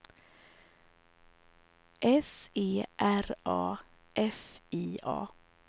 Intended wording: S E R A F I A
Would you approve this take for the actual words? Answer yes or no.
yes